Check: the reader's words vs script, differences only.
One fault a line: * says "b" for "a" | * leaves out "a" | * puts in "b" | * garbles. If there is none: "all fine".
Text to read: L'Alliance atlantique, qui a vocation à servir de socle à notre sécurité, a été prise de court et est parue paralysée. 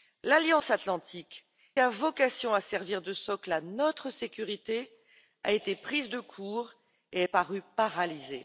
* leaves out "qui"